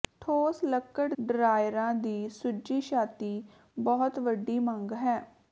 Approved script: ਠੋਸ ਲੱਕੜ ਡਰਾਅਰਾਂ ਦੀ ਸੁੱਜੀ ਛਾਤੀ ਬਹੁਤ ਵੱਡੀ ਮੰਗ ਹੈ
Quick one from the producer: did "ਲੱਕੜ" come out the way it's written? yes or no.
yes